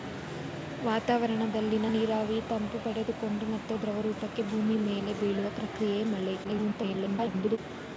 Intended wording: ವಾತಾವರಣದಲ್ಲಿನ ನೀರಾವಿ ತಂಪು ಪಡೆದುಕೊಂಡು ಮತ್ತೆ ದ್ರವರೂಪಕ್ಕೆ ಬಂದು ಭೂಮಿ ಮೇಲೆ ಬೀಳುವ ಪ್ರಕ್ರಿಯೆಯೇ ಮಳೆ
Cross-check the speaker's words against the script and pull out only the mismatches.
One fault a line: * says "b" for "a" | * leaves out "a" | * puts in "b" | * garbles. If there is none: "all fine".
* leaves out "ಬಂದು"
* garbles